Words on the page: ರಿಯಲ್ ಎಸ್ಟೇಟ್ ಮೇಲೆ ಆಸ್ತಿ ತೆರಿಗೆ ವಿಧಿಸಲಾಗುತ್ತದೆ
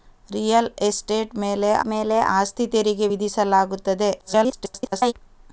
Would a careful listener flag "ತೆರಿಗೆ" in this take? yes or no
no